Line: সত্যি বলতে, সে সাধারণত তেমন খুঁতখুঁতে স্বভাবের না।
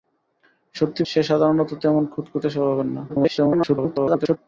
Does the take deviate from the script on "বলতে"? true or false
true